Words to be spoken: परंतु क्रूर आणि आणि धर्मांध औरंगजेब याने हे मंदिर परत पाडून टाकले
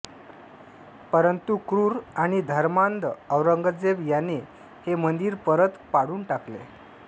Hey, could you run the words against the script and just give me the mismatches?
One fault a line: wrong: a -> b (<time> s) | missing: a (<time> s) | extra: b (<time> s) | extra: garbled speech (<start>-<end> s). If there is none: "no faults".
missing: आणि (2.4 s)